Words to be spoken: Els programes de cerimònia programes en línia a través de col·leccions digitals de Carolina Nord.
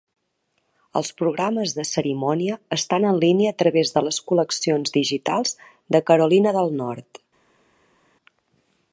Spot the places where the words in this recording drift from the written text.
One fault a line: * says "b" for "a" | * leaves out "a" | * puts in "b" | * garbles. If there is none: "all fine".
* says "estan" for "programes"
* puts in "les"
* puts in "del"